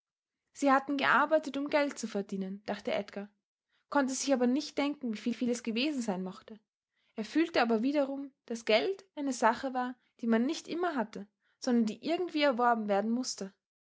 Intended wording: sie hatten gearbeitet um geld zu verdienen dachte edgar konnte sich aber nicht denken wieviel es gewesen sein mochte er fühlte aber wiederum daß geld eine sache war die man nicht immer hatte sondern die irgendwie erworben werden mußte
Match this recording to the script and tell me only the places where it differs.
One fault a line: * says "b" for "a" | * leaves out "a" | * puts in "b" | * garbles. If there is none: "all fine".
* puts in "wieviel"